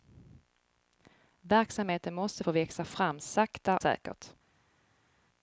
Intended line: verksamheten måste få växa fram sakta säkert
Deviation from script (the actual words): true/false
false